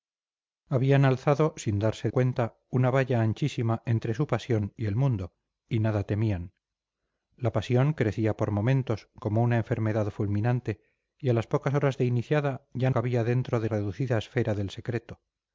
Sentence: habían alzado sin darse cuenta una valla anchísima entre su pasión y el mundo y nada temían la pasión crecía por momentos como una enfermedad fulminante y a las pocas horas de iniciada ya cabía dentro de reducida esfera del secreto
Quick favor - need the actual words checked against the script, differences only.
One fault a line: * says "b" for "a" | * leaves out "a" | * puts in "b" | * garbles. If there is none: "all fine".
all fine